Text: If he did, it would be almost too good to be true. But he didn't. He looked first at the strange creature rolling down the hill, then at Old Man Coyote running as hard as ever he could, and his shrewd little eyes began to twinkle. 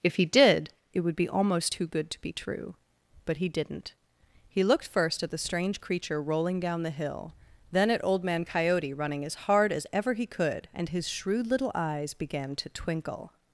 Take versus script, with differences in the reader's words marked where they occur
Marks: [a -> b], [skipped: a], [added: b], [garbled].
If he did, it would be almost too good to be true. But he didn't. He looked first at the strange creature rolling down the hill, then at Old Man Coyote running as hard as ever he could, and his shrewd little eyes began to twinkle.